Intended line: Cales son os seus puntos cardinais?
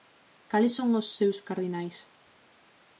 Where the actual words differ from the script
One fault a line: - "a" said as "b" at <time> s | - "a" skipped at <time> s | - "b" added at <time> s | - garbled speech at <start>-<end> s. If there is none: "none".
- "puntos" skipped at 1.4 s